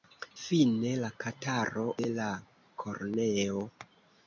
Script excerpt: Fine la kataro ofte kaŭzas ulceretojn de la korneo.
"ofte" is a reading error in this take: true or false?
true